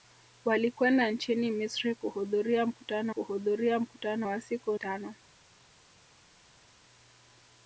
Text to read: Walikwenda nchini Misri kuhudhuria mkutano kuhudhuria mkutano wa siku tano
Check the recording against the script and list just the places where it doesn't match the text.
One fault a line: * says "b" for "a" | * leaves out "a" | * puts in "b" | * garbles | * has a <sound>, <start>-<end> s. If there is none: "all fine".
all fine